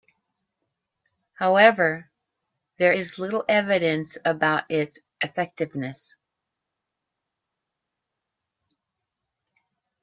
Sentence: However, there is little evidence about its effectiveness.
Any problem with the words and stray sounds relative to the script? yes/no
no